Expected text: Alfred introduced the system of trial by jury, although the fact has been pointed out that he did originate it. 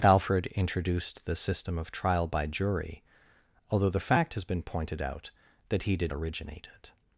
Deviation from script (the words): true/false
false